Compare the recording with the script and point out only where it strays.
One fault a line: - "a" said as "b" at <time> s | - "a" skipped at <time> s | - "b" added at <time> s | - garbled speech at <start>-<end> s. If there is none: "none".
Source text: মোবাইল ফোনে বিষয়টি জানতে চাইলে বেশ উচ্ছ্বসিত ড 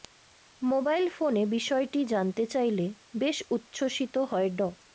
- "হয়ে" added at 4.3 s